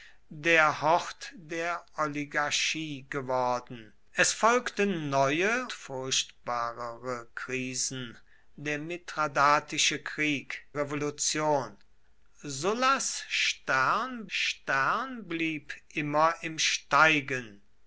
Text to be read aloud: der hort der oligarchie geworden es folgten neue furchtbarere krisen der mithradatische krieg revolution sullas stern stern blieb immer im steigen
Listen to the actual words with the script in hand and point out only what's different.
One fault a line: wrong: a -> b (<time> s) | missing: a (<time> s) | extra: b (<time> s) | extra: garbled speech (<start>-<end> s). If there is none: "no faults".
no faults